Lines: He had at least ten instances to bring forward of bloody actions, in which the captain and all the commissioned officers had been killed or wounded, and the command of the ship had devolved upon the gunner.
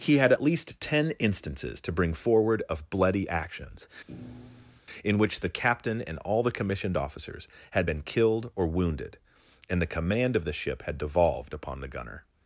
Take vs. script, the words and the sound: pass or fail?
fail